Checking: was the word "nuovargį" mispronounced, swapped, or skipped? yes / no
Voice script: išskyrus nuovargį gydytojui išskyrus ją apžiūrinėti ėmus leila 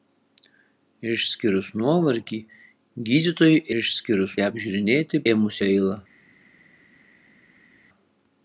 no